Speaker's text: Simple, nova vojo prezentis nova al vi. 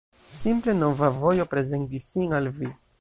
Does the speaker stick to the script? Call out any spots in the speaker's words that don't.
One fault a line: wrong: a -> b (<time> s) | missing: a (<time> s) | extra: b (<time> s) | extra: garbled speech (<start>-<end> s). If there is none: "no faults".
wrong: nova -> sin (2.1 s)